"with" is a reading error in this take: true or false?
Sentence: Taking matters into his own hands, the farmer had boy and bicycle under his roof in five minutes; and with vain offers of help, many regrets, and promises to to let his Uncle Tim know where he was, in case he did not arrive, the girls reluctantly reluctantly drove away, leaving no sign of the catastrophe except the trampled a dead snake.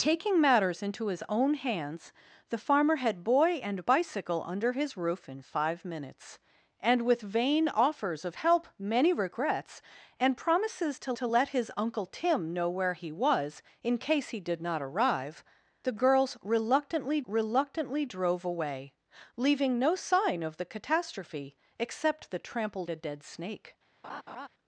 false